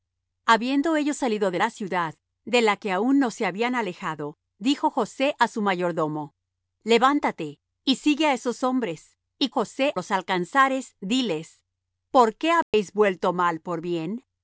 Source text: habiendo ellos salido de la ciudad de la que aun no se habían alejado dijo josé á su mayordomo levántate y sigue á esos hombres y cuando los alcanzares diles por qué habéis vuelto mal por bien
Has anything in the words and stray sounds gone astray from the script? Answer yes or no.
yes